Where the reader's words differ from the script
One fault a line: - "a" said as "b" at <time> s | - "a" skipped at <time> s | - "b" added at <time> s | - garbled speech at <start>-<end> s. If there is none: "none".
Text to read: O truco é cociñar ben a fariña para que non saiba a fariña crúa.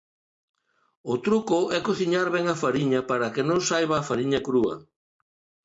none